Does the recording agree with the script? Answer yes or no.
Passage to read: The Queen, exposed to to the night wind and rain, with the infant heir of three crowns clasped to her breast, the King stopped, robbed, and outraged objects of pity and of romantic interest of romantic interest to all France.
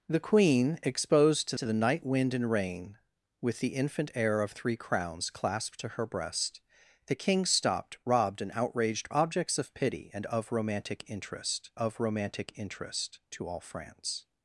yes